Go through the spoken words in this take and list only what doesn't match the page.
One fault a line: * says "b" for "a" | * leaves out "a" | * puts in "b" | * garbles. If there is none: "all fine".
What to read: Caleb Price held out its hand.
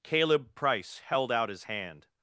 * says "his" for "its"